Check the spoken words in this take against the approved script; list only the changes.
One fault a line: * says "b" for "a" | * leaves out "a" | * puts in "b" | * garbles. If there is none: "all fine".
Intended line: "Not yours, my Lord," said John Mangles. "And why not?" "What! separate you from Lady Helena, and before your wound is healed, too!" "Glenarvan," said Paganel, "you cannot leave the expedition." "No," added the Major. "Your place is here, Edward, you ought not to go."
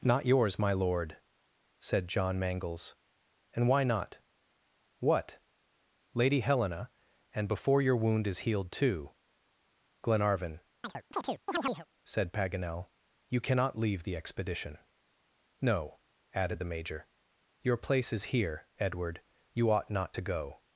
* leaves out "separate you from"